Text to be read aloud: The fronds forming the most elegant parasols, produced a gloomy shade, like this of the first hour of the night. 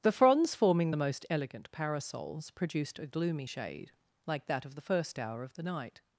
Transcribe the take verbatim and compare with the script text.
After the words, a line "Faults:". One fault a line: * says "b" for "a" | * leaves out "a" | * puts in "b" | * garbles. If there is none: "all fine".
The fronds forming the most elegant parasols, produced a gloomy shade, like that of the first hour of the night.
Faults:
* says "that" for "this"